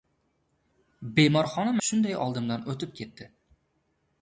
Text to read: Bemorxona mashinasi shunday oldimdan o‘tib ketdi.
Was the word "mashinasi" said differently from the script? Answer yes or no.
yes